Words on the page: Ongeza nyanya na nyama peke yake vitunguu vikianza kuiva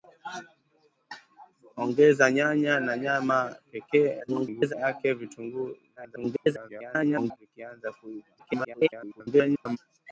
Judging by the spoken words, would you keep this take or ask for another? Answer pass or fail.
fail